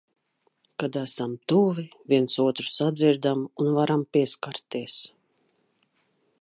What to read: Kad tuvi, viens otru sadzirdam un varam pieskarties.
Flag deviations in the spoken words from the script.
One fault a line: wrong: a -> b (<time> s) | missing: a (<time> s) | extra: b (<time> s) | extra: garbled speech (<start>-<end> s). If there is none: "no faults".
extra: esam (1.0 s)